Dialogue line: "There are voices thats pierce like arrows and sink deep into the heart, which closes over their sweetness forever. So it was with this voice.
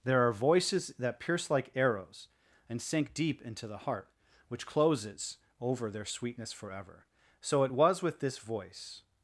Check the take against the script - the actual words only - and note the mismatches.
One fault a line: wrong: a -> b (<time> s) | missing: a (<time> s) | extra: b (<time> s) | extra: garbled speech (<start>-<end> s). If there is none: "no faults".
wrong: thats -> that (1.0 s)